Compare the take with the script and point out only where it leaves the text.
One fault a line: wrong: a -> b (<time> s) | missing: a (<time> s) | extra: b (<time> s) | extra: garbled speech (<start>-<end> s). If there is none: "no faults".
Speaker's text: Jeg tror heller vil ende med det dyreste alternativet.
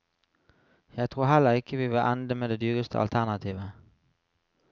extra: ikke vi (1.5 s)